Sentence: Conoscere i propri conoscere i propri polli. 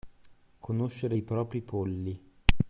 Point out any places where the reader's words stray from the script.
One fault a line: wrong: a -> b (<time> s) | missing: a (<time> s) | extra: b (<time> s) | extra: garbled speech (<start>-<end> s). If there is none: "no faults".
missing: conoscere i propri (1.6 s)